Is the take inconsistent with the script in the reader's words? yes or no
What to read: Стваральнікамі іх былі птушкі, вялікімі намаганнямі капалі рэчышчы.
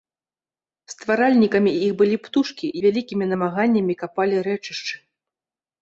no